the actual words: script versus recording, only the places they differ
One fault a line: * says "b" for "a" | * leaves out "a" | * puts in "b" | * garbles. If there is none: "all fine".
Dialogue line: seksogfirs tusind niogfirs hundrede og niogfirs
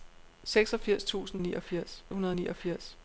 all fine